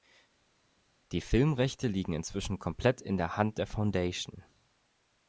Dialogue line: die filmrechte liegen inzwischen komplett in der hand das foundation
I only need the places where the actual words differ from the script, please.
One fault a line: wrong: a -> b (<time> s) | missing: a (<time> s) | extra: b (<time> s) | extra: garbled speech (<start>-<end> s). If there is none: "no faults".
wrong: das -> der (3.6 s)